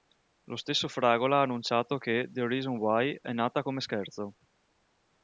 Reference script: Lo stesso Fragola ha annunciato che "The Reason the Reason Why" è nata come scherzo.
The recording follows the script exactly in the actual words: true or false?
false